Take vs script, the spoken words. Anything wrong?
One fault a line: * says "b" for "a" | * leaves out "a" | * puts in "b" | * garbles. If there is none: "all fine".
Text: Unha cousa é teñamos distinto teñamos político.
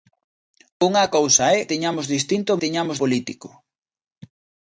all fine